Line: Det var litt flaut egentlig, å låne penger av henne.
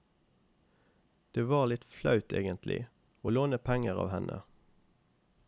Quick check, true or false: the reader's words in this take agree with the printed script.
true